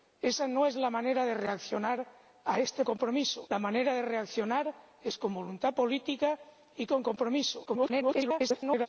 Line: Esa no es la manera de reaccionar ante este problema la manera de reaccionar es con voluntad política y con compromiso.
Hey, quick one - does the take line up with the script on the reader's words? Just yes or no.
no